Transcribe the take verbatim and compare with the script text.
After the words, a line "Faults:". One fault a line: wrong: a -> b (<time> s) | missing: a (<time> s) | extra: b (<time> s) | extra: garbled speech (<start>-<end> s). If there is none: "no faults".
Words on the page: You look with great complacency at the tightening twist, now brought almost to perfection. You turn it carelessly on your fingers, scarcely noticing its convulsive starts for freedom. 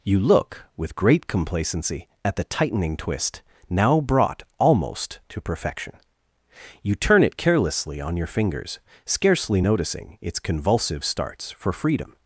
You look with great complacency at the tightening twist, now brought almost to perfection. You turn it carelessly on your fingers, scarcely noticing its convulsive starts for freedom.
Faults:
no faults